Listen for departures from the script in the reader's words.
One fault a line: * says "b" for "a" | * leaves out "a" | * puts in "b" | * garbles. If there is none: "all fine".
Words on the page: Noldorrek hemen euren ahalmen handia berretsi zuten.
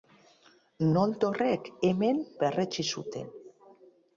* leaves out "euren ahalmen handia"